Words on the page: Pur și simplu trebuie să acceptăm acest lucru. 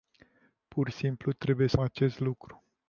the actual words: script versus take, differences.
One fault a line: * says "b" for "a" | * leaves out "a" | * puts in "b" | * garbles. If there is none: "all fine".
* leaves out "și"
* leaves out "acceptăm"